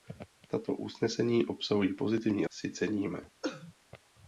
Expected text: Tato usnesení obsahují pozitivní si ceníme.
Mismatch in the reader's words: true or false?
false